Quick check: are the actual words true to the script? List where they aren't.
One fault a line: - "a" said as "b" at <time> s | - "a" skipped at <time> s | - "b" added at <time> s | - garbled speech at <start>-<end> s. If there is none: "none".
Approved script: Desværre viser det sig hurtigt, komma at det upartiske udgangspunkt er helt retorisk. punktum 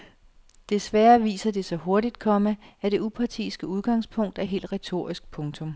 none